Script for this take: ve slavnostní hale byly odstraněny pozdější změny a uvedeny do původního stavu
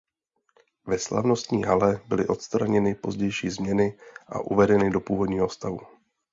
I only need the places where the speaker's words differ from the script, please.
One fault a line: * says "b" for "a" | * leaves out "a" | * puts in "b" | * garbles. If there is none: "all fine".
all fine